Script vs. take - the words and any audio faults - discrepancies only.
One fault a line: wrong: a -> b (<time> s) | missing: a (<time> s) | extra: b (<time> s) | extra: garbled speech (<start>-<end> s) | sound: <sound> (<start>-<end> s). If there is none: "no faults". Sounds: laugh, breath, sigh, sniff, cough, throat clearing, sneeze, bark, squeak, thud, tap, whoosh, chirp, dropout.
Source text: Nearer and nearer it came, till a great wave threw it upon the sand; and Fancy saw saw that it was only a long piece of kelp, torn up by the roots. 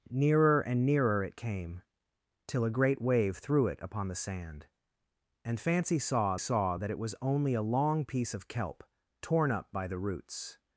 no faults